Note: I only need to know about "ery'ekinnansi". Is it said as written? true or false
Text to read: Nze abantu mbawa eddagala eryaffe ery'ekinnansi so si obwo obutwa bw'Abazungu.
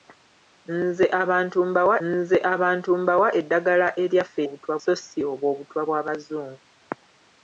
false